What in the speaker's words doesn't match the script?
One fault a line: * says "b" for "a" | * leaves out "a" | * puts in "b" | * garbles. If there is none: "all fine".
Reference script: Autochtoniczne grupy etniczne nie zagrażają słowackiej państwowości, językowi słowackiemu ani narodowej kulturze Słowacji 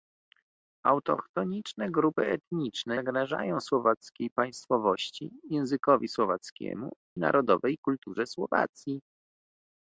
* leaves out "nie"
* leaves out "ani"